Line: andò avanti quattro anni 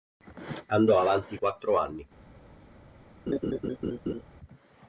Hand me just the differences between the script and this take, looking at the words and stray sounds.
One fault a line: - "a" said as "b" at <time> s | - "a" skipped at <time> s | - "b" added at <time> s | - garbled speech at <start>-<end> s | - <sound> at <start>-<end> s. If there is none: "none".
- laugh at 3.3-4.2 s